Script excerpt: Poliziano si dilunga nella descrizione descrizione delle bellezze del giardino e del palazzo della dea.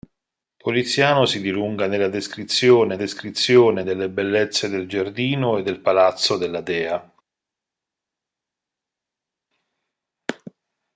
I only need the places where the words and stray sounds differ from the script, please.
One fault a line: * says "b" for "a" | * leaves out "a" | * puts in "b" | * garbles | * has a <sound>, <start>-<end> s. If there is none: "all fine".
all fine